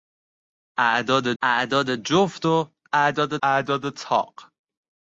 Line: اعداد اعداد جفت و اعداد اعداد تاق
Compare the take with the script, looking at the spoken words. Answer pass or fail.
pass